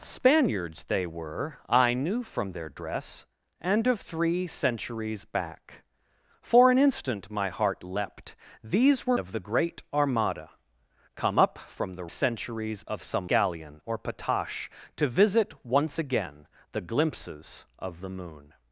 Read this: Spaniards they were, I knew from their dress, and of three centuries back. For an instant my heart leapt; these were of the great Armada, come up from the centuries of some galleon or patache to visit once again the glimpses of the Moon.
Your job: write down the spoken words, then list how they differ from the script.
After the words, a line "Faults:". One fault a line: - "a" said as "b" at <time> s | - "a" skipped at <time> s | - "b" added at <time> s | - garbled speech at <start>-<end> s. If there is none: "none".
Spaniards they were, I knew from their dress, and of three centuries back. For an instant my heart leapt; these were of the great Armada, come up from the centuries of some galleon or patache to visit once again the glimpses of the Moon.
Faults:
none